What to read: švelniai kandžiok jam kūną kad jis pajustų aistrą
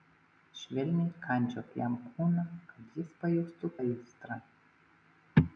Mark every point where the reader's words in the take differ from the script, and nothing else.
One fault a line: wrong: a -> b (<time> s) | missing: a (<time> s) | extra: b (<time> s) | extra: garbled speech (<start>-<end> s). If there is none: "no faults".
no faults